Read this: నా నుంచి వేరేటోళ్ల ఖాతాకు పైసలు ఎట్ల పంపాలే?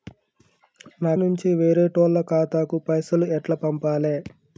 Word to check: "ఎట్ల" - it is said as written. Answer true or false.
true